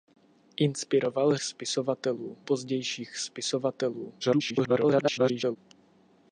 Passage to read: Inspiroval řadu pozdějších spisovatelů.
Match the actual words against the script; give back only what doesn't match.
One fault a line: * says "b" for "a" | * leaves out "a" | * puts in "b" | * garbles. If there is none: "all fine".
* says "spisovatelů" for "řadu"
* garbles